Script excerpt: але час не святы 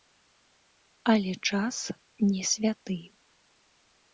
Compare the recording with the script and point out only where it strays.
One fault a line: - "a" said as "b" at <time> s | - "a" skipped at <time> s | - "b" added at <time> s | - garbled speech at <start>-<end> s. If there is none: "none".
none